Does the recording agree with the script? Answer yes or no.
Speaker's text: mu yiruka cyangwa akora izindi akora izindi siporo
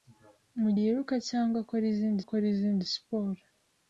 yes